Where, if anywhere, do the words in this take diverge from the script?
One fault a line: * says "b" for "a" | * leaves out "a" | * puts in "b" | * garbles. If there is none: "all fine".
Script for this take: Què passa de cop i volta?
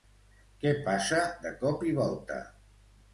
all fine